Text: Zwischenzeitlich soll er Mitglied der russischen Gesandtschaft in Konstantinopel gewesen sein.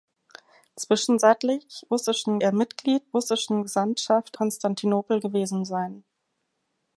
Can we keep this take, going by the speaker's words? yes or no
no